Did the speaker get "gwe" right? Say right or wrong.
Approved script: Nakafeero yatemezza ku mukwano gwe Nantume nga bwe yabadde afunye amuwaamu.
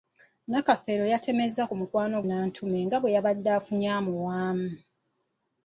wrong